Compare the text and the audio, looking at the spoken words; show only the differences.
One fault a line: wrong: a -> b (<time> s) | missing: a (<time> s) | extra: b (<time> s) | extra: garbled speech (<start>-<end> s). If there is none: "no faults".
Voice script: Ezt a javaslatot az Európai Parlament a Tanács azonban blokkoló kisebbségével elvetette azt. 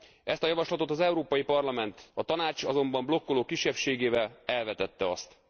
no faults